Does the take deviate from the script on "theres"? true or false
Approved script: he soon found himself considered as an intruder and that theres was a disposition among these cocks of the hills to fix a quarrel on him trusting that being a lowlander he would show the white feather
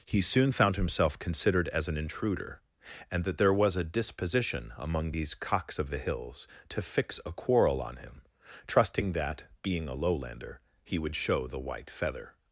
true